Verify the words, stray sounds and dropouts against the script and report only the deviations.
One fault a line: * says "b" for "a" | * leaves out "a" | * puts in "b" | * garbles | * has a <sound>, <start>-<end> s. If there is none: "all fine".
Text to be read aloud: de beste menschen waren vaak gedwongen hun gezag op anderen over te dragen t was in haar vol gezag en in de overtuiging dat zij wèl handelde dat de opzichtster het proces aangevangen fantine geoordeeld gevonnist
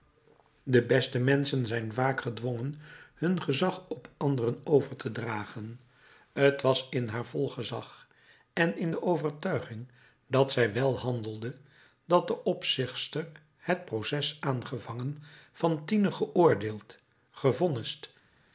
* says "zijn" for "waren"